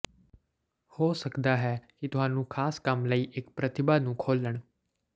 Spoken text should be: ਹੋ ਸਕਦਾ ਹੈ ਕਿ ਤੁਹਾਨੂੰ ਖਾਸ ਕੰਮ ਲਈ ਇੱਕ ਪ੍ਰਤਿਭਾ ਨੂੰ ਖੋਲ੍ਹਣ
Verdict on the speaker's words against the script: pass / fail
pass